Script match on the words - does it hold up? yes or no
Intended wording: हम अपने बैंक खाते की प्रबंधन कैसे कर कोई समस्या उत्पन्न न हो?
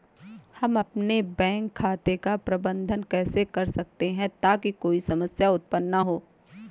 no